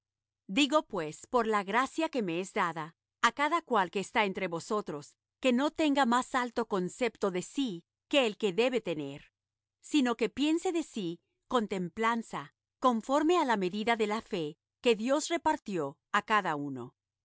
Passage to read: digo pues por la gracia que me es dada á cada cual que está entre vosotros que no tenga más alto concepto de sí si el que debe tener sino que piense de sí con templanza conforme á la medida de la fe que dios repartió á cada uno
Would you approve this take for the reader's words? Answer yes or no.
no